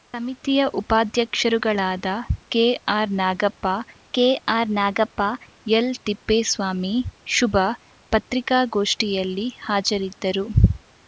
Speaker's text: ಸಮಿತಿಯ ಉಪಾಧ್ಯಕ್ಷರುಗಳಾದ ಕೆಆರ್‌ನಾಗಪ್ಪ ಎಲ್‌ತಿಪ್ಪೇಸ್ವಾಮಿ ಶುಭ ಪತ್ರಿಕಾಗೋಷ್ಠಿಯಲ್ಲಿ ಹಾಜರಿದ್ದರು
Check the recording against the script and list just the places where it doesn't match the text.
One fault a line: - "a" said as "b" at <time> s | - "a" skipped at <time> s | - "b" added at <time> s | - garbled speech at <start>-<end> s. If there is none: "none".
- "ಕೆಆರ್‌ನಾಗಪ್ಪ" added at 4.1 s